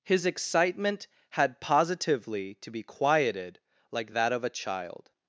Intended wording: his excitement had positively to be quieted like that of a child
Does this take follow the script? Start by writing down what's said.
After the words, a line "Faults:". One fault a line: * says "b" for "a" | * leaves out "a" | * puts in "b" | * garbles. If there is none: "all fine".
his excitement had positively to be quieted like that of a child
Faults:
all fine